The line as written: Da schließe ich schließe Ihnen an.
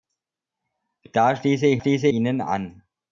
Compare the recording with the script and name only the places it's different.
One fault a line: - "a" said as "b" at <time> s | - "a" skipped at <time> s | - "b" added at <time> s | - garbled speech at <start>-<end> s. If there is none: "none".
none